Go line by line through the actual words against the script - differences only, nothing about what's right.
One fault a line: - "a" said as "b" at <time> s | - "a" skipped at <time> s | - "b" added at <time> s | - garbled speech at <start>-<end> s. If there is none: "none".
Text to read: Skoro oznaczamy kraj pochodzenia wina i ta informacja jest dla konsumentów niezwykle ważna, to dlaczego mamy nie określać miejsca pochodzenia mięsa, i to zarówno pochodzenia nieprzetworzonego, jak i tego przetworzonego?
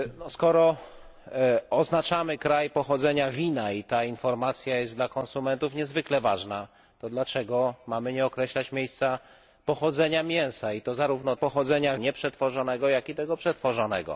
none